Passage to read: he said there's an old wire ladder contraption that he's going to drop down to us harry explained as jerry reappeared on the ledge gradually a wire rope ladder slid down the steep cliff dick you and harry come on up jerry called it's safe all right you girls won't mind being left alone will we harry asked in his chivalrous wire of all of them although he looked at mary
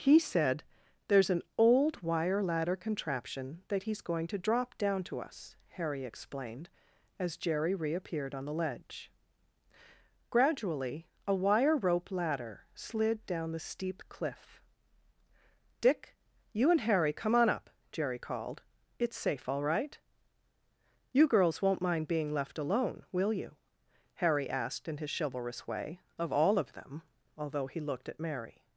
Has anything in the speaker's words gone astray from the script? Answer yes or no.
yes